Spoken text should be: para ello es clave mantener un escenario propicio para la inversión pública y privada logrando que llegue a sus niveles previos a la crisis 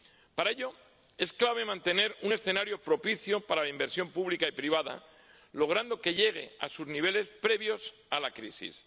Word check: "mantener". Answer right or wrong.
right